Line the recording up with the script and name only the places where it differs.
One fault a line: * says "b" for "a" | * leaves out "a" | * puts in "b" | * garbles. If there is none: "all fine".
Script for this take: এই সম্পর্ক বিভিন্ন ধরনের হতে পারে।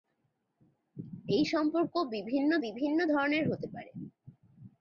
* puts in "বিভিন্ন"